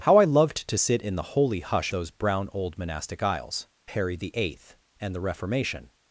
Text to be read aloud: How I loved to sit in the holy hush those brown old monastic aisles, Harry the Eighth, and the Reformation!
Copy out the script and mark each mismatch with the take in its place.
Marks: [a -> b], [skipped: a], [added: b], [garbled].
How I loved to sit in the holy hush those brown old monastic aisles, Harry the Eighth, and the Reformation!